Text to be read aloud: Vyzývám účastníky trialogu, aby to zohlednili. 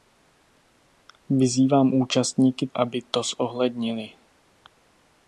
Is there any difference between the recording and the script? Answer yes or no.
yes